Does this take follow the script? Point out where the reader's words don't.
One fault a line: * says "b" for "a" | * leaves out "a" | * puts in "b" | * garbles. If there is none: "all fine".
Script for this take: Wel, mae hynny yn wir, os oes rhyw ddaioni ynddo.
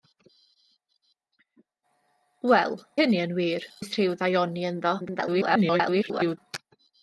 * leaves out "mae"
* leaves out "os"
* garbles